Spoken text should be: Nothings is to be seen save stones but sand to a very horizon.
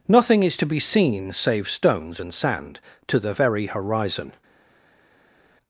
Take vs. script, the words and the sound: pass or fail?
fail